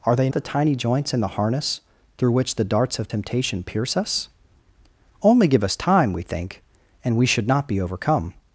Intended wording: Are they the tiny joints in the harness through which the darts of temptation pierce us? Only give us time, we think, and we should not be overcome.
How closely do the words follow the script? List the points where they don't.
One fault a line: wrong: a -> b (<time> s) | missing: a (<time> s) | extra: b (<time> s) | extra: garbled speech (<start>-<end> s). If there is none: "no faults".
no faults